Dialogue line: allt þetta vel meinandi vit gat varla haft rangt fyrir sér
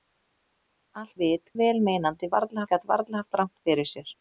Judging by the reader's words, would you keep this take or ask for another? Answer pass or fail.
fail